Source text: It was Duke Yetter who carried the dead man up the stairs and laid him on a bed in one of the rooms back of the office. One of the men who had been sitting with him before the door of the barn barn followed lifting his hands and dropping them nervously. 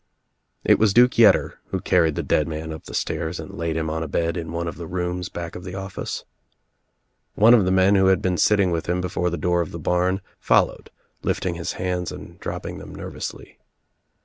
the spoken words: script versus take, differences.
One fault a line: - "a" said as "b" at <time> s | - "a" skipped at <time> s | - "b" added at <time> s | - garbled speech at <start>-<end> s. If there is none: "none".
- "barn" skipped at 10.2 s